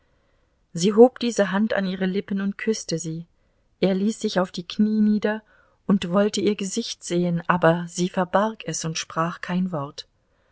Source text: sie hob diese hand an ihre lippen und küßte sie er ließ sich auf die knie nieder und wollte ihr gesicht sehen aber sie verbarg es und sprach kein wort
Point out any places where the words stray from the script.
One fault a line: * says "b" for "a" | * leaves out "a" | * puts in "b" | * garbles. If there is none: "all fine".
all fine